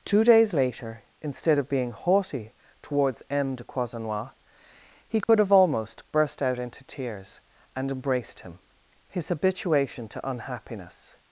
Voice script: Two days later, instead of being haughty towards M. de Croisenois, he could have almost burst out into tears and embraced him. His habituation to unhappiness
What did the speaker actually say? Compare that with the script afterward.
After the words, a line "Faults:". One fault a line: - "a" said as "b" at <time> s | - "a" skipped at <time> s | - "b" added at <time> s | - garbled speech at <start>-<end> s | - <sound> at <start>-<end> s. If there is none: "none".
Two days later, instead of being haughty towards M. de Croisenois, he could have almost burst out into tears and embraced him. His habituation to unhappiness
Faults:
- dropout at 5.2-5.3 s